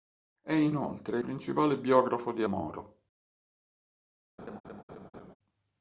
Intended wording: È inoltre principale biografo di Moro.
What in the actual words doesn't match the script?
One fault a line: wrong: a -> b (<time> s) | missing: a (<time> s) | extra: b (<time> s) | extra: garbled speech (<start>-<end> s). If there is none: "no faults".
no faults